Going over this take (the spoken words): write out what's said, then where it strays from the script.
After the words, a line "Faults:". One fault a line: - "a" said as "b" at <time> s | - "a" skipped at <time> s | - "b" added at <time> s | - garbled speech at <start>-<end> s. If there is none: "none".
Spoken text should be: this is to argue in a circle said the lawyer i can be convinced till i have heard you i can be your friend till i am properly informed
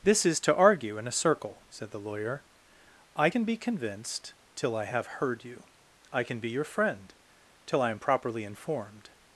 this is to argue in a circle said the lawyer i can be convinced till i have heard you i can be your friend till i am properly informed
Faults:
none